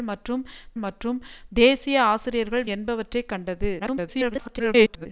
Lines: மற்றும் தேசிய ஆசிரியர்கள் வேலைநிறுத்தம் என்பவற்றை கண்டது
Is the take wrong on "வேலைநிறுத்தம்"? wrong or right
wrong